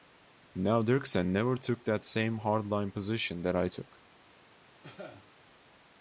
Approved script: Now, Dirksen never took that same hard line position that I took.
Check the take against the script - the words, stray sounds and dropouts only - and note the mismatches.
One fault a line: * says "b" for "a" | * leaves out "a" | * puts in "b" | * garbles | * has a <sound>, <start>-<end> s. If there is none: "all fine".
* has a cough, 4.8-5.3 s